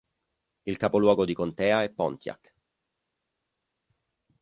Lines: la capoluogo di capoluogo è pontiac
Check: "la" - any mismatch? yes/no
yes